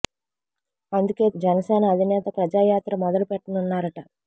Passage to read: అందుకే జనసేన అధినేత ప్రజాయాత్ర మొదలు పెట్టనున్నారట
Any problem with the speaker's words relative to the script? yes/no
no